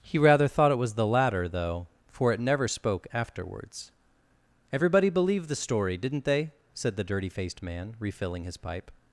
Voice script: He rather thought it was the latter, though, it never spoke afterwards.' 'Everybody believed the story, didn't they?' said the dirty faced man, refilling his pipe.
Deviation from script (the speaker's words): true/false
true